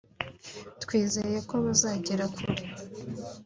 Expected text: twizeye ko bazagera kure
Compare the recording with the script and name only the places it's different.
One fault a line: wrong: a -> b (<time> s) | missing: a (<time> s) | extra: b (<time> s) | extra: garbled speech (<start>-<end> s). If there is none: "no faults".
no faults